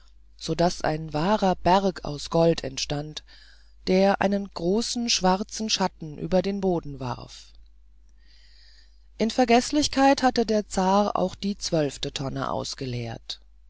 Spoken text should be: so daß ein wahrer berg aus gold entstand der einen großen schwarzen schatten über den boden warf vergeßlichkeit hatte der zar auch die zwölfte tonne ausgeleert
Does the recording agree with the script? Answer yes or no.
no